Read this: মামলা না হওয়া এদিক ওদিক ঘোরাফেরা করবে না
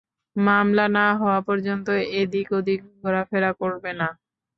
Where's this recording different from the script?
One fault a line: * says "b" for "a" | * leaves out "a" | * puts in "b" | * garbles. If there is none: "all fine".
* puts in "পর্যন্ত"